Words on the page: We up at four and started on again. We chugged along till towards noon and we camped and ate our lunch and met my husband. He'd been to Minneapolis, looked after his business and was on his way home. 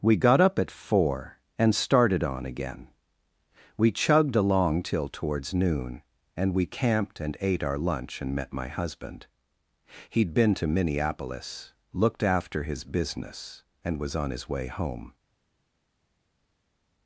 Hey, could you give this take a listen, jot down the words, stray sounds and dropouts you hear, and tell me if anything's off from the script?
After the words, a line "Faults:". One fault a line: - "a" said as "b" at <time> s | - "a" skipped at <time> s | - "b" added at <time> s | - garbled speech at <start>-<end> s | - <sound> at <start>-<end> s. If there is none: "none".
We got up at four and started on again. We chugged along till towards noon and we camped and ate our lunch and met my husband. He'd been to Minneapolis, looked after his business and was on his way home.
Faults:
- "got" added at 0.1 s